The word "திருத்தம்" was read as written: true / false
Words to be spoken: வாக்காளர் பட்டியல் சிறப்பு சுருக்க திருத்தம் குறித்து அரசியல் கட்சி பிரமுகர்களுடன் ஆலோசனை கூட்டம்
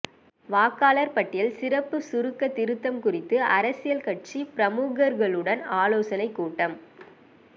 true